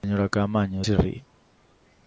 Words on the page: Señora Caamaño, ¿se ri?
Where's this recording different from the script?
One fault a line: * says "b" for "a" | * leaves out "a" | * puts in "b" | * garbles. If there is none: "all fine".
all fine